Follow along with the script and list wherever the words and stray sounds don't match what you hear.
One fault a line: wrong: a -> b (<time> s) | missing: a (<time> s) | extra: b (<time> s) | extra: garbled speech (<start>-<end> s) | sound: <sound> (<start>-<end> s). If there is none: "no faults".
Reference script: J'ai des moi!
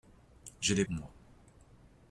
no faults